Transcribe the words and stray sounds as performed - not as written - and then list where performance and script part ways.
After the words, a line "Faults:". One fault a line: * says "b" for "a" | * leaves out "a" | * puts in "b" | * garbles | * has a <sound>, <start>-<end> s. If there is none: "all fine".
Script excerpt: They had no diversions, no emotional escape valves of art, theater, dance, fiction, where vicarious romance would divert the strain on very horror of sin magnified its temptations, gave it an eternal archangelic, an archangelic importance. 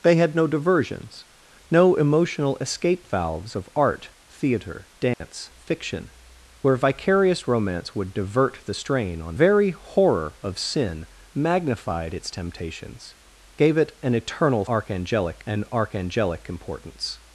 They had no diversions, no emotional escape valves of art, theater, dance, fiction, where vicarious romance would divert the strain on very horror of sin magnified its temptations, gave it an eternal archangelic, an archangelic importance.
Faults:
* has a dropout, 5.1-5.2 s